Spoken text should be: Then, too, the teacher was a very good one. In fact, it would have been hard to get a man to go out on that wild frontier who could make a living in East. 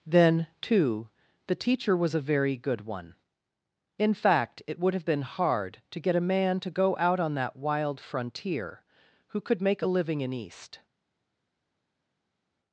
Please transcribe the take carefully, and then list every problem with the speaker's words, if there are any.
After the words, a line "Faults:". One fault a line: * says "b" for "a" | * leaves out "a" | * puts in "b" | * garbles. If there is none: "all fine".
Then, too, the teacher was a very good one. In fact, it would have been hard to get a man to go out on that wild frontier who could make a living in East.
Faults:
all fine